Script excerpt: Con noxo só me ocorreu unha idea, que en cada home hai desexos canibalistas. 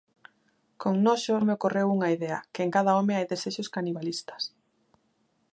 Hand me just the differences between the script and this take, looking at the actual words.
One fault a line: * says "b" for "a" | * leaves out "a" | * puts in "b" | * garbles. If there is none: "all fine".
* leaves out "só"